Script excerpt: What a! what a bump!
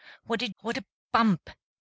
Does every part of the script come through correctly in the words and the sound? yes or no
yes